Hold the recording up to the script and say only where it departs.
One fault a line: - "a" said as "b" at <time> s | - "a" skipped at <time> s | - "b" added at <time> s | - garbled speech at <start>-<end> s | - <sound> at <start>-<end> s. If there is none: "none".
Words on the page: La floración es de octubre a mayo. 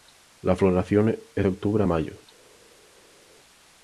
none